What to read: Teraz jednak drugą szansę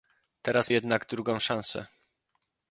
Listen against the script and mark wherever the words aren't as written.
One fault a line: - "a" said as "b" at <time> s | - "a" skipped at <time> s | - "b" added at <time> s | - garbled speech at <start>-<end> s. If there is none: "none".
none